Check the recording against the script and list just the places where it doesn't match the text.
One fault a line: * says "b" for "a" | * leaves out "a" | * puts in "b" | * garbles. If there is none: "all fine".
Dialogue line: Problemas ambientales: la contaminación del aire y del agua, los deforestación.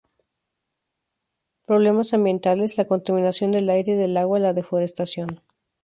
* says "la" for "los"